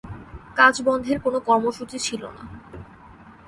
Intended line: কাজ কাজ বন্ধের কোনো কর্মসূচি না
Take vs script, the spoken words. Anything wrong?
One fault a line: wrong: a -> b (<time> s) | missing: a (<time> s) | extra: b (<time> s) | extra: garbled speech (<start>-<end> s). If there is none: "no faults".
missing: কাজ (0.8 s)
extra: ছিল (2.0 s)